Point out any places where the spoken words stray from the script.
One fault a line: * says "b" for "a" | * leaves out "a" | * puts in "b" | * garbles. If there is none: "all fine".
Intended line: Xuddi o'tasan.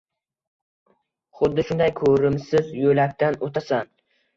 * puts in "shunday ko'rimsiz yo'lakdan"